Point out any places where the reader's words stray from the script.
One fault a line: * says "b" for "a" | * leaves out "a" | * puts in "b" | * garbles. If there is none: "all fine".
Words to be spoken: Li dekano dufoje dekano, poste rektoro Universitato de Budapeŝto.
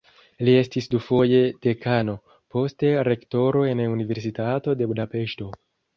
* says "estis" for "dekano"
* puts in "en"